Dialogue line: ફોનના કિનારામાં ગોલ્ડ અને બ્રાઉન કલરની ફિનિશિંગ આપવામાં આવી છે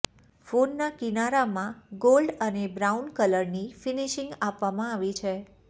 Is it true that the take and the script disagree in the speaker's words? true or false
false